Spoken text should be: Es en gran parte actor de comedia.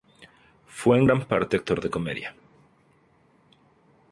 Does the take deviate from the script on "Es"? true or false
true